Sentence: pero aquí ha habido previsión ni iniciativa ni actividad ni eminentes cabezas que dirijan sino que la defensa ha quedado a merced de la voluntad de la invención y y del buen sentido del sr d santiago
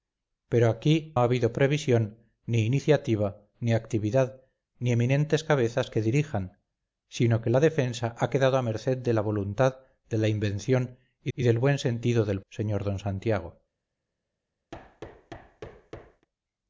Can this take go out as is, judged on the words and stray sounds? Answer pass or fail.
fail